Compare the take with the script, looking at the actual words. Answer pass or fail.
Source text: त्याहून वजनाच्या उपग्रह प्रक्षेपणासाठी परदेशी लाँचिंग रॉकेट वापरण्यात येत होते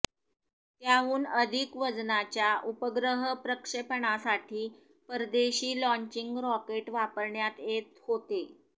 fail